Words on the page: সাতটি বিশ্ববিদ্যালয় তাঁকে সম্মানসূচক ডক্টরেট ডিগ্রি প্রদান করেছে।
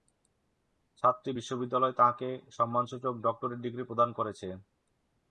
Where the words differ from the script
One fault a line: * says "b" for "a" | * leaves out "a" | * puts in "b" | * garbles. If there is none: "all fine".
all fine